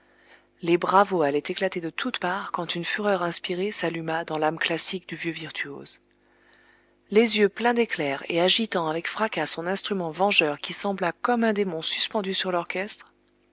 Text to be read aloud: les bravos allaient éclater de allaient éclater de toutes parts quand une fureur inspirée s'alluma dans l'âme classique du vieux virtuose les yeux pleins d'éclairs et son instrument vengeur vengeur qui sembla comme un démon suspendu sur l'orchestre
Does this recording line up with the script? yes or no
no